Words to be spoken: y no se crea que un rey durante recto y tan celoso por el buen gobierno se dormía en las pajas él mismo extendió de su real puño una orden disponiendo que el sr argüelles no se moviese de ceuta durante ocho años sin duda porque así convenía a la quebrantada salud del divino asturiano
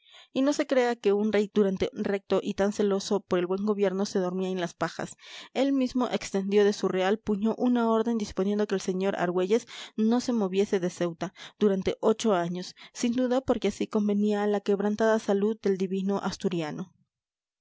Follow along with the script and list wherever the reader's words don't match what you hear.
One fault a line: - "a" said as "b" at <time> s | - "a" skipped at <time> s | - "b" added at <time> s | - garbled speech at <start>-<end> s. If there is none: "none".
none